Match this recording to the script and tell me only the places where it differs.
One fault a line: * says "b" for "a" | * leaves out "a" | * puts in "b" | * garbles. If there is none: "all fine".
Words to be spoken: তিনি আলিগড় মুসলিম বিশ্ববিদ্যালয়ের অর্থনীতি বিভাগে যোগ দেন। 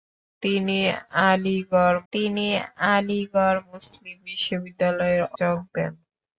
* puts in "তিনি আলিগড়"
* leaves out "অর্থনীতি বিভাগে"